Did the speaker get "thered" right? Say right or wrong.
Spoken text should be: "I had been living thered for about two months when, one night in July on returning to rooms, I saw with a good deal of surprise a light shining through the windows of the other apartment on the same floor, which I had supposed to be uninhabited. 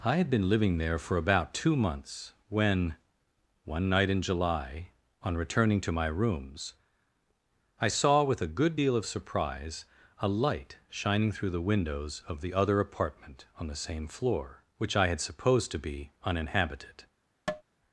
wrong